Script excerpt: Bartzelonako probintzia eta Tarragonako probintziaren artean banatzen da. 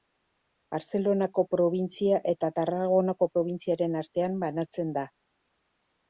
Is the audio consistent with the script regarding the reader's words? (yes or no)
yes